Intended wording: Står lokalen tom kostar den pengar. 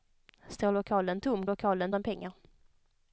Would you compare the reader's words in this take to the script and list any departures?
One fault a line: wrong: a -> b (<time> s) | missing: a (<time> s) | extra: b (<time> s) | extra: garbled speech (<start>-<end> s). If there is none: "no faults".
wrong: kostar -> lokalen (1.4 s)